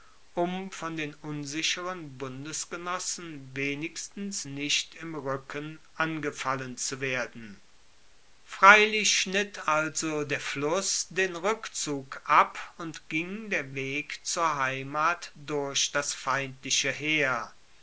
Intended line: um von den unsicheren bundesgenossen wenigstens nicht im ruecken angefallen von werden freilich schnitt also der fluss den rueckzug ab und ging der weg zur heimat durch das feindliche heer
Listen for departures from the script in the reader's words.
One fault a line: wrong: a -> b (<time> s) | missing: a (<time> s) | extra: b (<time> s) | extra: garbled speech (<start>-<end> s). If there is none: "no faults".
wrong: von -> zu (6.8 s)